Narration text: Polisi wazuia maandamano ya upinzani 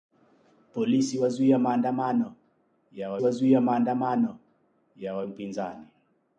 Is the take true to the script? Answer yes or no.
no